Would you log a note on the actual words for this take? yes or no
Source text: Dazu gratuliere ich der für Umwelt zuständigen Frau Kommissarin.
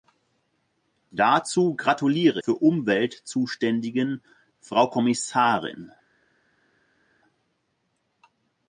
yes